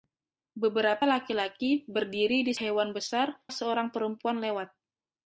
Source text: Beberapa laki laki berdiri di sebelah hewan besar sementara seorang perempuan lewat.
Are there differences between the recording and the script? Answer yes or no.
yes